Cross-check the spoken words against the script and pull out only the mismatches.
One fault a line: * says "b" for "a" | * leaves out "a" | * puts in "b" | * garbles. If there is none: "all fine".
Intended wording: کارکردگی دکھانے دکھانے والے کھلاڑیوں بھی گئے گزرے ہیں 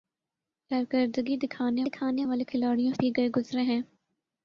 all fine